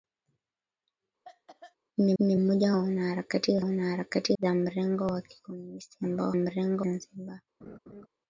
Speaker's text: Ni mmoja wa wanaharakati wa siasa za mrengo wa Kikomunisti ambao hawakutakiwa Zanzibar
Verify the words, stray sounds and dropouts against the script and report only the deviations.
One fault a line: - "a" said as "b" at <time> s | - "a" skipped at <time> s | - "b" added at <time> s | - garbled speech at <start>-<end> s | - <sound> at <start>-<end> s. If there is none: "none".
- cough at 1.2-1.8 s
- "ni" added at 2.2 s
- "siasa" said as "wanaharakati" at 3.6 s
- "hawakutakiwa" said as "mrengo" at 6.3 s
- laugh at 7.6-8.1 s